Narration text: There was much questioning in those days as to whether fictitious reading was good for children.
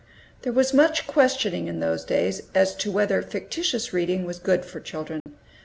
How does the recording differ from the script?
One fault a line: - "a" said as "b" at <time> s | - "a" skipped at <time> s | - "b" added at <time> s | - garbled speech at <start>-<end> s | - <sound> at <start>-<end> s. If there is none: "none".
- dropout at 5.2-5.3 s